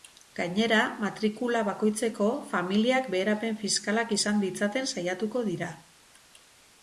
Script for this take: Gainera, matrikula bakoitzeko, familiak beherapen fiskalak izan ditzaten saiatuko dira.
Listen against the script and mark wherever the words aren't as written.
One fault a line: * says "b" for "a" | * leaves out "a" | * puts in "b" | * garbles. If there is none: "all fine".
all fine